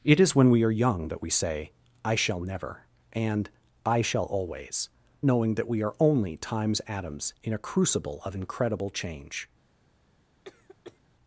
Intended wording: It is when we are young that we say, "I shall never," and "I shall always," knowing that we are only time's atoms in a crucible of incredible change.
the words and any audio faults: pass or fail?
fail